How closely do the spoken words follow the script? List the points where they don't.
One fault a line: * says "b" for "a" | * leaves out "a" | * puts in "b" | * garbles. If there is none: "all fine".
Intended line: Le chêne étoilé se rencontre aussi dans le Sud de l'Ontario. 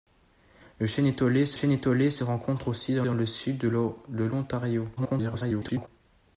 * puts in "chêne étoilé se"
* puts in "dans"
* garbles